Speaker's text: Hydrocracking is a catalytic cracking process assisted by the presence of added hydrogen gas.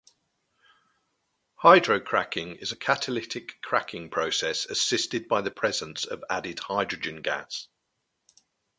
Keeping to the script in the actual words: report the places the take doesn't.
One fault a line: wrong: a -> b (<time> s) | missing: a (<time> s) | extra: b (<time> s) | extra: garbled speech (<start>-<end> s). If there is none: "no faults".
no faults